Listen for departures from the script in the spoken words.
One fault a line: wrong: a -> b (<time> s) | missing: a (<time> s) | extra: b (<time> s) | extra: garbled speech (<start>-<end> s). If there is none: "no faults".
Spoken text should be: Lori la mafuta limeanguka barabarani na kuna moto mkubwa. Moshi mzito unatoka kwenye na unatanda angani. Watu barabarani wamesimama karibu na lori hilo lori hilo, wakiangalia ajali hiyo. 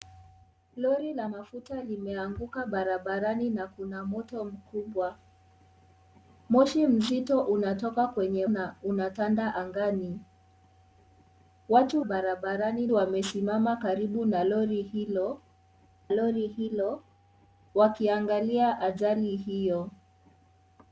no faults